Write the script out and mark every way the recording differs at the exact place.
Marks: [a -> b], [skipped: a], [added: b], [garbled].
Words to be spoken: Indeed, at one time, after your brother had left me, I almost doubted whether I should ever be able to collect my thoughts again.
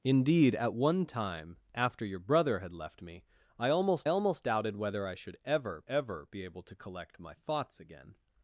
Indeed, at one time, after your brother had left me, I almost [added: almost] doubted whether I should ever [added: ever] be able to collect my thoughts again.